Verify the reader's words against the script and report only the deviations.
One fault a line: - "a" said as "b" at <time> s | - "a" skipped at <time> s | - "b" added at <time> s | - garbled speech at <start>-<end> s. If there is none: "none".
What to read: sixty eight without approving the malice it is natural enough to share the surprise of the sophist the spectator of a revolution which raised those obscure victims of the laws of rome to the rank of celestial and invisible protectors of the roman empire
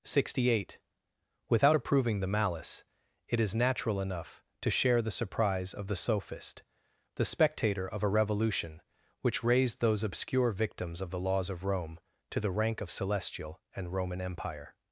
- "invisible protectors of the" skipped at 13.9 s